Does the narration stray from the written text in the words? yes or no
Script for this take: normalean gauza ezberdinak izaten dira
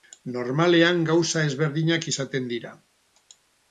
no